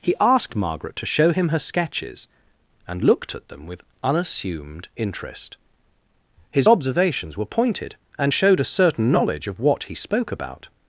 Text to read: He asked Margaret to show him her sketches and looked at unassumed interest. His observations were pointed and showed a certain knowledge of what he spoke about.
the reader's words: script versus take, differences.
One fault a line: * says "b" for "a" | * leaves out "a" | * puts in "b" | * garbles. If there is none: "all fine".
* puts in "them with"